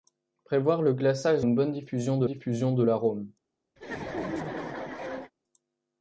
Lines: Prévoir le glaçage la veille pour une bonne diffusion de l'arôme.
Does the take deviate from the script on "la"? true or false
true